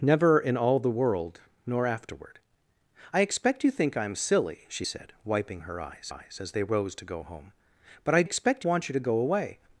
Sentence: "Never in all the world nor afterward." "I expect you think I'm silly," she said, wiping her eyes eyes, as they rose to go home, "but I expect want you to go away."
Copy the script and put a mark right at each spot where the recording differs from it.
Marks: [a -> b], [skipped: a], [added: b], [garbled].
"Never in all the world nor afterward." "I expect you think I'm silly," she said, wiping her eyes eyes, as they rose to go home, "but I expect want you to go away."